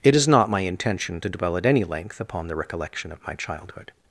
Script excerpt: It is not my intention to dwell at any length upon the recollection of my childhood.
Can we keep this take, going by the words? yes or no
yes